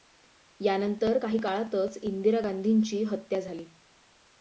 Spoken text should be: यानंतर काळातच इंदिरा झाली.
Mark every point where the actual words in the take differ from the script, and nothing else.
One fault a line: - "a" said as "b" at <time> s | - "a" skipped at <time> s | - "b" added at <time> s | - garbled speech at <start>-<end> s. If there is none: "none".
- "काही" added at 1.1 s
- "गांधींची हत्या" added at 2.4 s